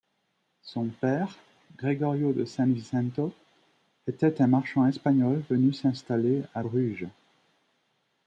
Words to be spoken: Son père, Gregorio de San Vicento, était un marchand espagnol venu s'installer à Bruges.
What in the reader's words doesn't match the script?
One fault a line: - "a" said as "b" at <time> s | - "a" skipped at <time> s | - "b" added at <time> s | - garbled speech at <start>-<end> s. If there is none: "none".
none